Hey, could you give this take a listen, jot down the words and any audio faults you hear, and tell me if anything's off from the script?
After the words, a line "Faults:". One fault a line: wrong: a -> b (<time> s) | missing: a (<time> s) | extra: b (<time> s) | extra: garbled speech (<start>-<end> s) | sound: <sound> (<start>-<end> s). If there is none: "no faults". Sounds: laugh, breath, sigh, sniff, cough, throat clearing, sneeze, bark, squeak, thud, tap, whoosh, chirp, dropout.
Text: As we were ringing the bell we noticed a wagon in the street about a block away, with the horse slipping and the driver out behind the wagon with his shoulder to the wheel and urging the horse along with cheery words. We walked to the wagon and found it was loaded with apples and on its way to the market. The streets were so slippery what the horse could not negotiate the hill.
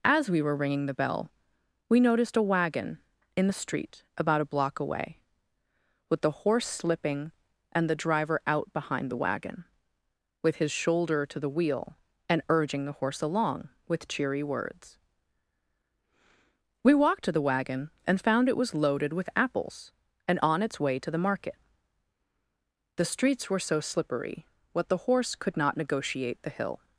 As we were ringing the bell we noticed a wagon in the street about a block away, with the horse slipping and the driver out behind the wagon with his shoulder to the wheel and urging the horse along with cheery words. We walked to the wagon and found it was loaded with apples and on its way to the market. The streets were so slippery what the horse could not negotiate the hill.
Faults:
no faults